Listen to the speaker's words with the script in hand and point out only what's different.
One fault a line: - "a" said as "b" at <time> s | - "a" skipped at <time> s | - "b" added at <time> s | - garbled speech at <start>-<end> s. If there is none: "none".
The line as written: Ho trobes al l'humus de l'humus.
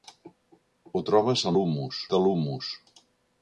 none